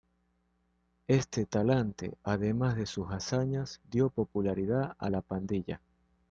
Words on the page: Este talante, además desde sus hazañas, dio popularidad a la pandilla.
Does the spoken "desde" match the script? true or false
false